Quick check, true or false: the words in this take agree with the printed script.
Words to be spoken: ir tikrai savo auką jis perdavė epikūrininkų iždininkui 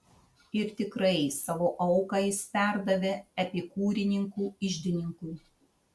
true